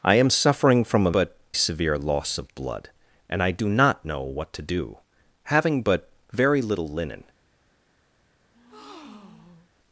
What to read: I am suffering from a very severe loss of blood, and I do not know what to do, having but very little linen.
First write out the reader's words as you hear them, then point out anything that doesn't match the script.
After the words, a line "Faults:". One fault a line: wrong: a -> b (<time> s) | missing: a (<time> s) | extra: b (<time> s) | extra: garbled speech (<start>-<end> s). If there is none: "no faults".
I am suffering from a but severe loss of blood, and I do not know what to do, having but very little linen.
Faults:
wrong: very -> but (1.1 s)